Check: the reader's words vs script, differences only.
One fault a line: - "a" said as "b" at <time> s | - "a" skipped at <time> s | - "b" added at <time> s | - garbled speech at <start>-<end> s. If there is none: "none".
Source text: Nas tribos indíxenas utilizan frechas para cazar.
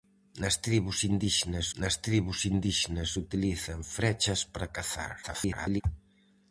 - "nas tribos indíxenas" added at 1.8 s
- garbled speech at 5.2-5.8 s